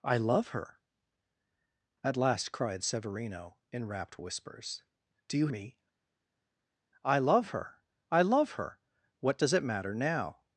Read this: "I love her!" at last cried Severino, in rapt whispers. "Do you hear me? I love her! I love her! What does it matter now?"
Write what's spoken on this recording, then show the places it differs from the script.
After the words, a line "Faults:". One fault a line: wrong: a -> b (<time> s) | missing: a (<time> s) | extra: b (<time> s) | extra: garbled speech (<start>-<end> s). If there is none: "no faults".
"I love her!" at last cried Severino, in rapt whispers. "Do you me? I love her! I love her! What does it matter now?"
Faults:
missing: hear (5.5 s)